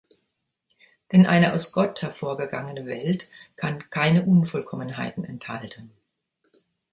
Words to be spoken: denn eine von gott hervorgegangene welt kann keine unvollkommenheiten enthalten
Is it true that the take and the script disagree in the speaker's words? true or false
true